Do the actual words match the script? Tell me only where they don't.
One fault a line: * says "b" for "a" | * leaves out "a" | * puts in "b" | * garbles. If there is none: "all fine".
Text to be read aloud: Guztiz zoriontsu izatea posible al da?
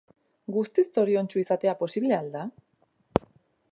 all fine